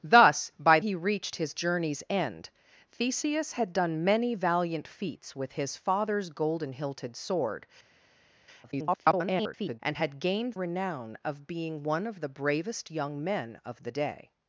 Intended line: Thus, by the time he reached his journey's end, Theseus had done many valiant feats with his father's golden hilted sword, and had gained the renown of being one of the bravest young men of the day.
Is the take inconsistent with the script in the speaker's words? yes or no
yes